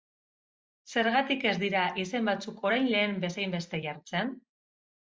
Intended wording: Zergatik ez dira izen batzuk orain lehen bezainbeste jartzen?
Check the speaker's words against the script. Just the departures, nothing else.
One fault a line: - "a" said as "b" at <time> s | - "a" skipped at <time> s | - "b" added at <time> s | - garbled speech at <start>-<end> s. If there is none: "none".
none